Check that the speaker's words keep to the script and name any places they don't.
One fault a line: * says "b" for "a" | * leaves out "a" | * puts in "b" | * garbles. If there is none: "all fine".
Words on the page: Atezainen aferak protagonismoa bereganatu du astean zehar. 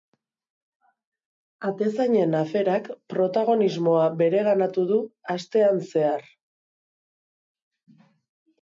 all fine